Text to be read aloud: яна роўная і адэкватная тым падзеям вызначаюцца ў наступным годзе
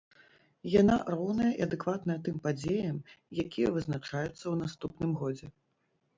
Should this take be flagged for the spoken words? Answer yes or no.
yes